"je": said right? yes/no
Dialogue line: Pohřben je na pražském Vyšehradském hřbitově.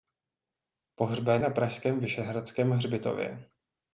no